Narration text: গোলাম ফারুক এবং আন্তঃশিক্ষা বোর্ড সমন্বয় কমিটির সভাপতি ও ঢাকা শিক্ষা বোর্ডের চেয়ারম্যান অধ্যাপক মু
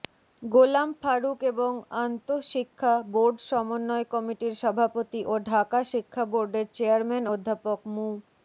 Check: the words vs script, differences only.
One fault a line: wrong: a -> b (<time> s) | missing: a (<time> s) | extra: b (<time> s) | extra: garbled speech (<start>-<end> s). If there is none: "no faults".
no faults